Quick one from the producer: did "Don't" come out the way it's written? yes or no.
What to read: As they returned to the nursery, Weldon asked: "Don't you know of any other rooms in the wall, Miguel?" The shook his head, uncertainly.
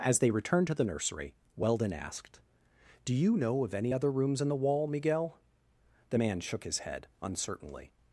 no